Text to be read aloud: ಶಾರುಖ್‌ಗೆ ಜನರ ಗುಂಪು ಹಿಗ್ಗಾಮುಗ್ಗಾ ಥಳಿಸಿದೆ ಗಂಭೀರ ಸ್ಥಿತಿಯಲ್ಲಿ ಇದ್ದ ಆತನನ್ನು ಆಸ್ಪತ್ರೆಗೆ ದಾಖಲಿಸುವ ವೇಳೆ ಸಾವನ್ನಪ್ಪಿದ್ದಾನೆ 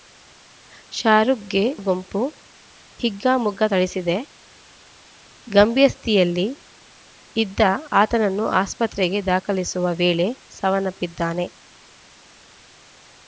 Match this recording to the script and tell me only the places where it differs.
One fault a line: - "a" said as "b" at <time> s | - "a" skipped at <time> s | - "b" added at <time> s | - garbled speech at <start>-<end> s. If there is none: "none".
- "ಜನರ" skipped at 1.6 s